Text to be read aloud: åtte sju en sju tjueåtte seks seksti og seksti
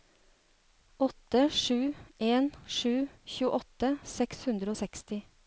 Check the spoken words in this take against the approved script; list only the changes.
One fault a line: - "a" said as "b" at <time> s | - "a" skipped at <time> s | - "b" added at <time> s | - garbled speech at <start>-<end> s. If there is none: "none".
- "seksti" said as "hundre" at 4.5 s